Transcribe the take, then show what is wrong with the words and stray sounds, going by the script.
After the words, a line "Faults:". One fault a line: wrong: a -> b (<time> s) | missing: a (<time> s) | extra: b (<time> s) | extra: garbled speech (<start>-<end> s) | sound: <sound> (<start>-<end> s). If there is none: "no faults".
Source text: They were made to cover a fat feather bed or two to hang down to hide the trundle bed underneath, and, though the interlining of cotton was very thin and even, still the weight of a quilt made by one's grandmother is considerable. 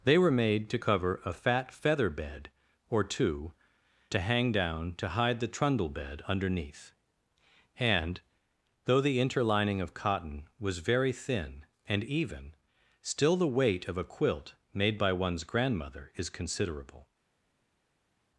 They were made to cover a fat feather bed or two to hang down to hide the trundle bed underneath, and, though the interlining of cotton was very thin and even, still the weight of a quilt made by one's grandmother is considerable.
Faults:
no faults